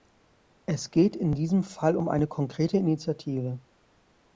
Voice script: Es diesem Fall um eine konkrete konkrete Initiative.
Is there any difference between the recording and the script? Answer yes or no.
yes